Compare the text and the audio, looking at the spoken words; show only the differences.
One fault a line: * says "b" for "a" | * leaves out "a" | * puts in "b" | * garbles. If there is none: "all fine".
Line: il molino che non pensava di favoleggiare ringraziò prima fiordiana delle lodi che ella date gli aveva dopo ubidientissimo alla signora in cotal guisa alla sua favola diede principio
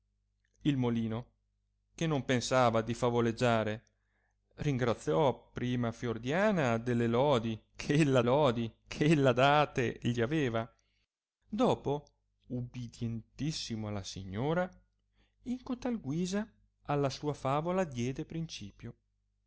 * puts in "lodi che ella"